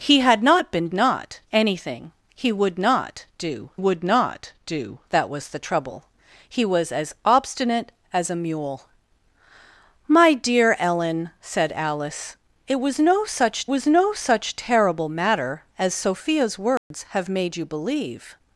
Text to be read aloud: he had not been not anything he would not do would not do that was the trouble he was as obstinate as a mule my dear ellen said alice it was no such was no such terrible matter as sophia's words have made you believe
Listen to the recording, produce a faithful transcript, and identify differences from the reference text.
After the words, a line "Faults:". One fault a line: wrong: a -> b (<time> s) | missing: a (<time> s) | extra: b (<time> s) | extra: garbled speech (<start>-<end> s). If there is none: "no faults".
he had not been not anything he would not do would not do that was the trouble he was as obstinate as a mule my dear ellen said alice it was no such was no such terrible matter as sophia's words have made you believe
Faults:
no faults